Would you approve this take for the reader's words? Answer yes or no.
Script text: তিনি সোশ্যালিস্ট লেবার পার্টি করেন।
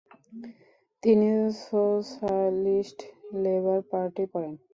yes